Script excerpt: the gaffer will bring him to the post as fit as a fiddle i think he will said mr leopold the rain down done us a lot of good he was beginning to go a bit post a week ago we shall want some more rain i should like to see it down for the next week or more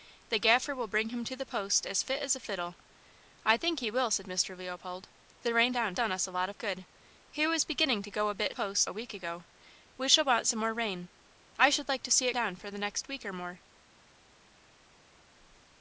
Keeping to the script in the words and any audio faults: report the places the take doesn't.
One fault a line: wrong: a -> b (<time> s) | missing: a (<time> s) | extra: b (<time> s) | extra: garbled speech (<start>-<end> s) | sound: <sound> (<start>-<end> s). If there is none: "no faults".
no faults